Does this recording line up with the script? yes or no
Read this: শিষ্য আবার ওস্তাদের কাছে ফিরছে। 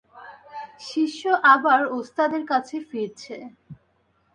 yes